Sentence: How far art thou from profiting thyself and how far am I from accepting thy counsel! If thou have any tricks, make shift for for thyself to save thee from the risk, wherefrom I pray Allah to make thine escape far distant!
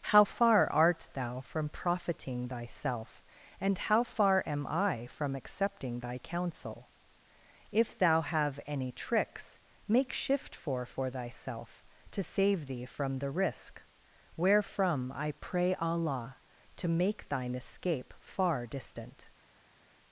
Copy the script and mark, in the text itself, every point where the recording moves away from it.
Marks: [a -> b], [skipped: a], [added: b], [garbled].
How far art thou from profiting thyself and how far am I from accepting thy counsel! If thou have any tricks, make shift for for thyself to save thee from the risk, wherefrom I pray Allah to make thine escape far distant!